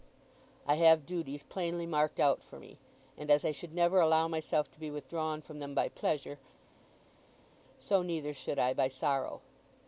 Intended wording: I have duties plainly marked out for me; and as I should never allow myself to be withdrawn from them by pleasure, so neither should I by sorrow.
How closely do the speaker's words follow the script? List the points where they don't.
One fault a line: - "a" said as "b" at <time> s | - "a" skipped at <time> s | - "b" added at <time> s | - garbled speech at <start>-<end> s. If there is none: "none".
none